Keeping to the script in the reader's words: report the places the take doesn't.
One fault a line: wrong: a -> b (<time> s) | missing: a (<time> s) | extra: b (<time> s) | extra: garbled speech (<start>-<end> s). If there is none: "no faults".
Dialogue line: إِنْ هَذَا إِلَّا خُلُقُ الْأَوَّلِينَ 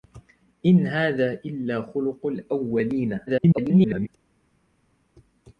extra: garbled speech (3.3-4.1 s)